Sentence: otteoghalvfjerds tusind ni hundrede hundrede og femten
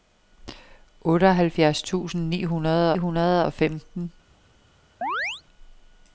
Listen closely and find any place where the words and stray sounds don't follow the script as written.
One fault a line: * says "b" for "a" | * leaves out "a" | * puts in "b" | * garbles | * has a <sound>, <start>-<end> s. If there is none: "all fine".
* has a chirp, 5.0-5.4 s